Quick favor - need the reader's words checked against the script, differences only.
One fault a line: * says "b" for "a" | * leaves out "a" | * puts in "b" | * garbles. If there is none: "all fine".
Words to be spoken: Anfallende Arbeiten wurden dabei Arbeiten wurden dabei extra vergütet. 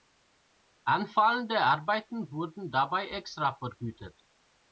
* leaves out "Arbeiten wurden dabei"